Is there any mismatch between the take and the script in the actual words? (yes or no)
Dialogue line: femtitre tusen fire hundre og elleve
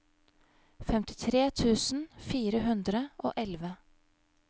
no